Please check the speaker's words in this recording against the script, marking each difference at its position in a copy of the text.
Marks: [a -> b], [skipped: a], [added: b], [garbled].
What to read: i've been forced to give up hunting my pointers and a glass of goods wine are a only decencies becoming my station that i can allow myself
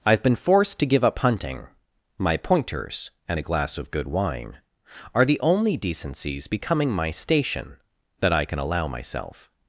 i've been forced to give up hunting my pointers and a glass of [goods -> good] wine are [a -> the] only decencies becoming my station that i can allow myself